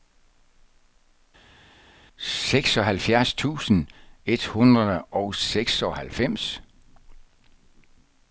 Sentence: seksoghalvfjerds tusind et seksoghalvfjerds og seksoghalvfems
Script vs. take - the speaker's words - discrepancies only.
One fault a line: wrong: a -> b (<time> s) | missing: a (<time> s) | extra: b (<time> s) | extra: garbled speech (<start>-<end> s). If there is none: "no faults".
wrong: seksoghalvfjerds -> hundrede (4.5 s)